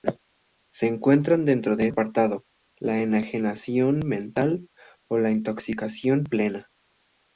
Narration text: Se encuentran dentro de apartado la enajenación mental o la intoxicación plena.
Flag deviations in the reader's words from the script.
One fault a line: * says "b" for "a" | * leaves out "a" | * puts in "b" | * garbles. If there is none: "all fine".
all fine